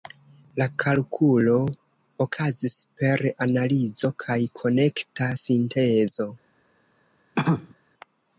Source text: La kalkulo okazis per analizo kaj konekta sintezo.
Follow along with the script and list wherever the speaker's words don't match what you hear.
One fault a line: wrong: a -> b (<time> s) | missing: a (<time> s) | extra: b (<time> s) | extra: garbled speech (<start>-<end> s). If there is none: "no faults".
no faults